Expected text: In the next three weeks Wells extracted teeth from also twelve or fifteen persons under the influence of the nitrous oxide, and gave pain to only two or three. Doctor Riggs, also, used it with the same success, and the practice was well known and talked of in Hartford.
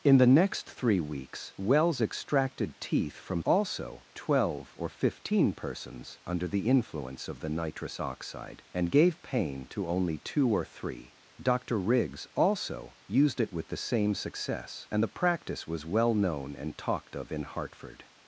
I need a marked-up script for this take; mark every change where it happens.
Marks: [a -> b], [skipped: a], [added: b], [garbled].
In the next three weeks Wells extracted teeth from also twelve or fifteen persons under the influence of the nitrous oxide, and gave pain to only two or three. Doctor Riggs, also, used it with the same success, and the practice was well known and talked of in Hartford.